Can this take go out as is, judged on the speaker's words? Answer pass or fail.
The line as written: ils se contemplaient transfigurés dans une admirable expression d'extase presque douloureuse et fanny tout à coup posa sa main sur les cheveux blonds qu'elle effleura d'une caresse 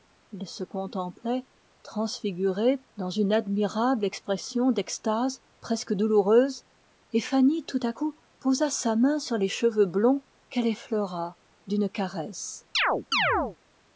pass